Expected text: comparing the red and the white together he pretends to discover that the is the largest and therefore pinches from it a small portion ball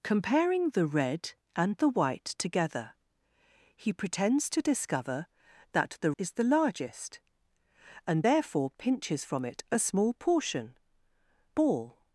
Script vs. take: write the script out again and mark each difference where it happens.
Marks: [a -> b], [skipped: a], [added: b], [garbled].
comparing the red and the white together he pretends to discover that the is the largest and therefore pinches from it a small portion ball